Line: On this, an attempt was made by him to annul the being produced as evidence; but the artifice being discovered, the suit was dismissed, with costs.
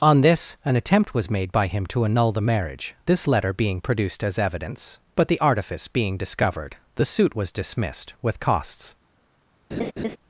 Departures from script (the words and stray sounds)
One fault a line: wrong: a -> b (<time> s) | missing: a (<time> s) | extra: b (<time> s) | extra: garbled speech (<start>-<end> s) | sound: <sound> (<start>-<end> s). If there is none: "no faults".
extra: marriage this letter (2.4 s)
sound: laugh (9.7-10.2 s)